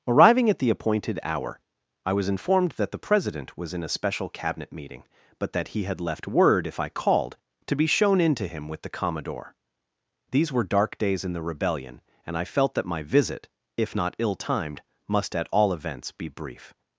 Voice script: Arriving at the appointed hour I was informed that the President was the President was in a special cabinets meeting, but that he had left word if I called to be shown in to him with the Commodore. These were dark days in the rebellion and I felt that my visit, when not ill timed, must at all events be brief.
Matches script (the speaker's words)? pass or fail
fail